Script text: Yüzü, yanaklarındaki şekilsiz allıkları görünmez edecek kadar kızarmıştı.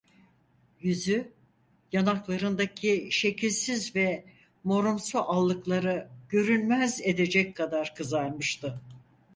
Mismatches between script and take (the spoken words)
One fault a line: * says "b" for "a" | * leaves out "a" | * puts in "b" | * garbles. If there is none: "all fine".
* puts in "ve morumsu"